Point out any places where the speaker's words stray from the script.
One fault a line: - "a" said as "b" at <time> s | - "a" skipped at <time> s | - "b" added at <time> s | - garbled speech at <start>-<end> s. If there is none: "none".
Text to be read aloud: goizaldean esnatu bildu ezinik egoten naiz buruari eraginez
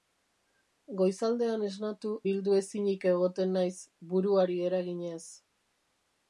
none